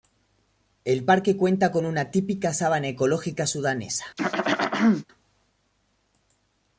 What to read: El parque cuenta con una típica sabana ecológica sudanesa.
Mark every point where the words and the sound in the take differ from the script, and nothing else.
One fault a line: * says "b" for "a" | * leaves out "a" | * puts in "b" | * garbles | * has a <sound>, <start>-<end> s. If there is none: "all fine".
* has a throat clearing, 4.2-5.1 s